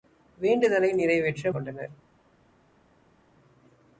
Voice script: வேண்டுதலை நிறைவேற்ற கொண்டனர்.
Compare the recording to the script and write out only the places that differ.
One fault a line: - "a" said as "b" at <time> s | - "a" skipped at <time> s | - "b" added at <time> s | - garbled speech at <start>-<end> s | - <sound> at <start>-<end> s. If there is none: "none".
none